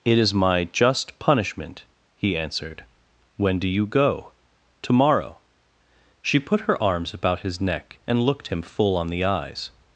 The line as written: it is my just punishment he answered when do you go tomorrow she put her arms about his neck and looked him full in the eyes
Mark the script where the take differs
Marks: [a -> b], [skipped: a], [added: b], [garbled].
it is my just punishment he answered when do you go tomorrow she put her arms about his neck and looked him full [in -> on] the eyes